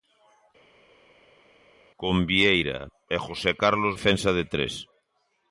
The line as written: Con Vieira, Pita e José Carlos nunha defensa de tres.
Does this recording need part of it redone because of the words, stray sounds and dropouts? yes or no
yes